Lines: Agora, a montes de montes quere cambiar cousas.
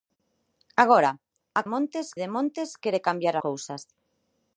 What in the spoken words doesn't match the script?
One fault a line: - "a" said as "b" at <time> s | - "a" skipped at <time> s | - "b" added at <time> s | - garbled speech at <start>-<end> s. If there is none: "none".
none